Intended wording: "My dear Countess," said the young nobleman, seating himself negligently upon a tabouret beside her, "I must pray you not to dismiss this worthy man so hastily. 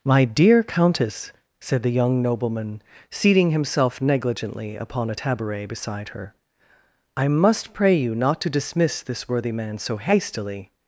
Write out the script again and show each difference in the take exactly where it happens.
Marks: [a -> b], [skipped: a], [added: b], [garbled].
"My dear Countess," said the young nobleman, seating himself negligently upon a tabouret beside her, "I must pray you not to dismiss this worthy man so hastily.